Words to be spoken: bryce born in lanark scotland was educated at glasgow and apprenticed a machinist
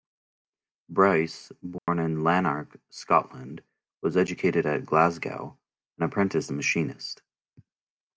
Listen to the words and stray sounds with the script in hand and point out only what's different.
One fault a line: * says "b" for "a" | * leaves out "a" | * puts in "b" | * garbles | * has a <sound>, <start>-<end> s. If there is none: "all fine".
* has a dropout, 1.8-1.9 s